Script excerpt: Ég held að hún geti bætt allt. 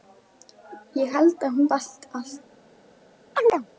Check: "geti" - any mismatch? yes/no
yes